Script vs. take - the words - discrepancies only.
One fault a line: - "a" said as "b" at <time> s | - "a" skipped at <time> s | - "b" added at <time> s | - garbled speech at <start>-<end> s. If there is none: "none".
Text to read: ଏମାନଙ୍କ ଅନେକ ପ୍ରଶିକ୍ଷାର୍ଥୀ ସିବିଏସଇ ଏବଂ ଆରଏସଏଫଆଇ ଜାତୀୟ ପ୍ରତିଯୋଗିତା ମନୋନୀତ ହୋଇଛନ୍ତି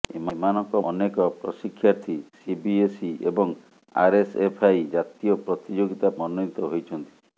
none